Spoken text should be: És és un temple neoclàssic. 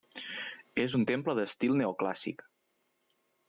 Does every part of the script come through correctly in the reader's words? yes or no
no